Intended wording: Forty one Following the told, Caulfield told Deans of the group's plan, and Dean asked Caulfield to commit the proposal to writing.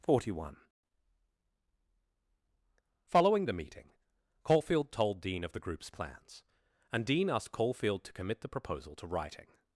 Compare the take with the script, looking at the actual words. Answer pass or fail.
fail